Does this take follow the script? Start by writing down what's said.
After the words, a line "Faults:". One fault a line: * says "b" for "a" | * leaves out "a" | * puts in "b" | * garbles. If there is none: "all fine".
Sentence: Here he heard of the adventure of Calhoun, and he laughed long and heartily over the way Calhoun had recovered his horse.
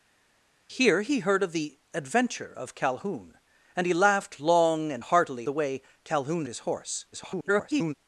Here he heard of the adventure of Calhoun, and he laughed long and heartily the way Calhoun his horse. [garbled]
Faults:
* leaves out "over"
* leaves out "had recovered"
* garbles